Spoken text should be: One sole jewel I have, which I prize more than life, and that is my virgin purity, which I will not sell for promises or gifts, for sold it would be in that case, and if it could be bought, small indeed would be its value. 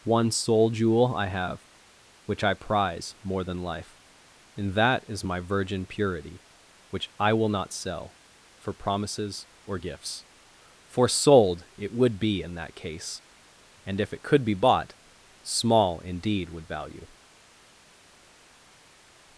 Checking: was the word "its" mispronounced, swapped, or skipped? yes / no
yes